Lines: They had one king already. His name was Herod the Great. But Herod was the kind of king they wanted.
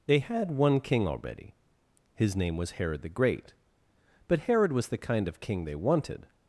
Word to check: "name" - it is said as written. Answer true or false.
true